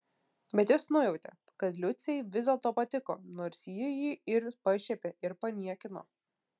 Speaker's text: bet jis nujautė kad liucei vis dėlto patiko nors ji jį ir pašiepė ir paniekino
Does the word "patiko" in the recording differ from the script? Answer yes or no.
no